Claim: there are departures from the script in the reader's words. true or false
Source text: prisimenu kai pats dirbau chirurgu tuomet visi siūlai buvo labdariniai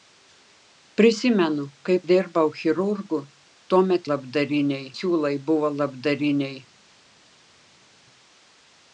true